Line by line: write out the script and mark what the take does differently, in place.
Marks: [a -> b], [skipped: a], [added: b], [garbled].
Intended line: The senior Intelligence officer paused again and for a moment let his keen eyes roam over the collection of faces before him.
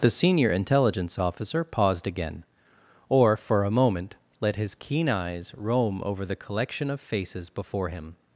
The senior Intelligence officer paused again [and -> or] for a moment let his keen eyes roam over the collection of faces before him.